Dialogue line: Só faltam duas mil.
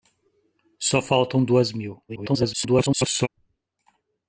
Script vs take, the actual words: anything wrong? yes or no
yes